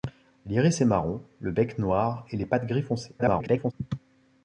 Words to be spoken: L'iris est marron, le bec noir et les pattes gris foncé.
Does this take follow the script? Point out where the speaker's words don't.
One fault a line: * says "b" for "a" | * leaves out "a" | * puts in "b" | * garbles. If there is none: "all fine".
* garbles